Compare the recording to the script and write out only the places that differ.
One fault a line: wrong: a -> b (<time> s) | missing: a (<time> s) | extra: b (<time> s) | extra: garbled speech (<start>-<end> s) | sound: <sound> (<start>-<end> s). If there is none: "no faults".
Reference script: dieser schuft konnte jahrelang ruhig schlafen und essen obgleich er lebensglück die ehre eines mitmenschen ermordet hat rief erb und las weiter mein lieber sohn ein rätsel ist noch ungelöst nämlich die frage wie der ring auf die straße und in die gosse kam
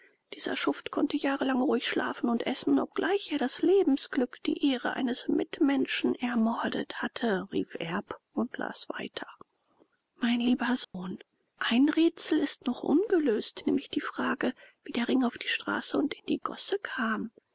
extra: das (3.4 s)
wrong: hat -> hatte (7.0 s)
sound: dropout (10.8-10.9 s)